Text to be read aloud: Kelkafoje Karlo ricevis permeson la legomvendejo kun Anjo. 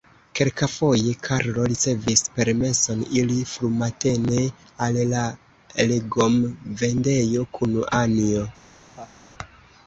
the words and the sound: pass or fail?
fail